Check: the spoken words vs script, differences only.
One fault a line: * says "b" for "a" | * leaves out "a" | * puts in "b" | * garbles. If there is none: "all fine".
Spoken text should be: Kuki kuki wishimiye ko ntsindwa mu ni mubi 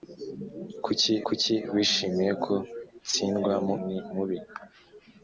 all fine